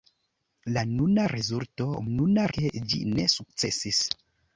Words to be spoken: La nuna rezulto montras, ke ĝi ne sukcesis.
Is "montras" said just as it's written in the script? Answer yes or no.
no